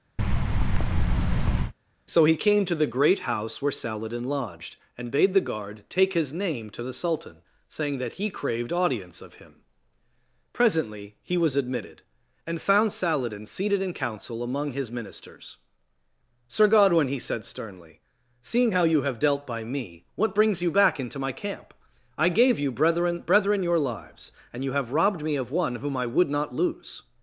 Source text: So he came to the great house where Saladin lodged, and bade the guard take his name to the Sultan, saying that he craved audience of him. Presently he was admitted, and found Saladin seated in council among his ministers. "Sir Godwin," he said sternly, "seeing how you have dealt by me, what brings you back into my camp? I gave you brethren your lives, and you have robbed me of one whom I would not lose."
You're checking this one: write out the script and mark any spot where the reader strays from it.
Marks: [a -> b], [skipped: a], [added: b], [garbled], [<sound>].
[thud] So he came to the great house where Saladin lodged, and bade the guard take his name to the Sultan, saying that he craved audience of him. Presently he was admitted, and found Saladin seated in council among his ministers. "Sir Godwin," he said sternly, "seeing how you have dealt by me, what brings you back into my camp? I gave you brethren [added: brethren] your lives, and you have robbed me of one whom I would not lose."